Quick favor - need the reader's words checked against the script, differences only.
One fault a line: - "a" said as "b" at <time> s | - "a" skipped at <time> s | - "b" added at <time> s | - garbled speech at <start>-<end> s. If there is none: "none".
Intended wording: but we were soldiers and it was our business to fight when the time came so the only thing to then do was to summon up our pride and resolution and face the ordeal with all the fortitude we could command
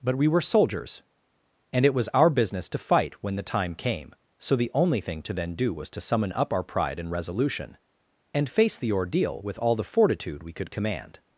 none